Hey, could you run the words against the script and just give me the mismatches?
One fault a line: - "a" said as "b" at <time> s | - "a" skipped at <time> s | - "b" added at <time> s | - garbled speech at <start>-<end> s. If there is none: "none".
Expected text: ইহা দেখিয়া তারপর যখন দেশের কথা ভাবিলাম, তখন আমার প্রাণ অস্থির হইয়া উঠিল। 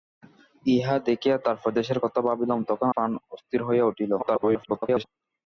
- "যখন" skipped at 1.7 s
- "আমার" skipped at 2.9 s
- garbled speech at 4.2-5.0 s